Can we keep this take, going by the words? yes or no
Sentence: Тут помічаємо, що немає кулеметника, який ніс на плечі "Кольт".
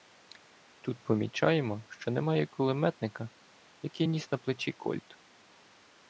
yes